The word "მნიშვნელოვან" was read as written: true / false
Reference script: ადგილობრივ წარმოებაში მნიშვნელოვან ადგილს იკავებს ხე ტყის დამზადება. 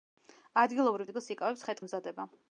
false